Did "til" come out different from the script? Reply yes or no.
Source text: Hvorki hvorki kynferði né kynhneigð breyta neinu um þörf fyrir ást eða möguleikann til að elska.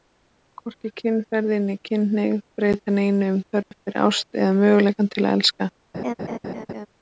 no